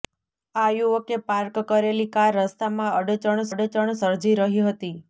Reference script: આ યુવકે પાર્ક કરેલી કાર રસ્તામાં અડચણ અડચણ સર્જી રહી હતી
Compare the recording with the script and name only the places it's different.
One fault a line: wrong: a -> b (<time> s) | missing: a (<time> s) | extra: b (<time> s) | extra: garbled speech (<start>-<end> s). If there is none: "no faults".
no faults